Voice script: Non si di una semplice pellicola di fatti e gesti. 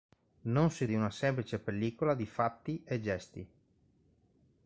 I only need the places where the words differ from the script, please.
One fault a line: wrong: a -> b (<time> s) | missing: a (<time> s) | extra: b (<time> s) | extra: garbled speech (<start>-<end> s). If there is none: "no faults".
no faults